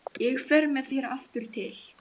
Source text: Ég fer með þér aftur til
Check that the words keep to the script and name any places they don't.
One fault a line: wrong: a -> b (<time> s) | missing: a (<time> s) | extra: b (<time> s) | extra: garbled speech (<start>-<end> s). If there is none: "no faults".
no faults